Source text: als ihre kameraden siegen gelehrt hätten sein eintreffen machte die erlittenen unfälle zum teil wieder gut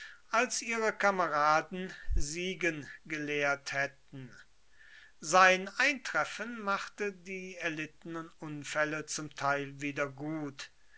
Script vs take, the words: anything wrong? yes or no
no